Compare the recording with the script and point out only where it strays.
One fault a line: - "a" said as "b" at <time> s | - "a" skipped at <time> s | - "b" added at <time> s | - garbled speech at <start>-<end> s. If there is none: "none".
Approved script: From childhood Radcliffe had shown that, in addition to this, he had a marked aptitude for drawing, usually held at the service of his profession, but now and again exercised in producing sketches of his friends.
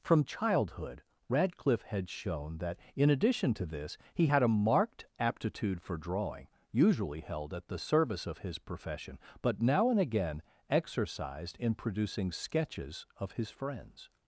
none